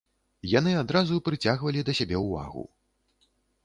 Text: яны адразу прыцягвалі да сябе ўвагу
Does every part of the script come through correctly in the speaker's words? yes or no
yes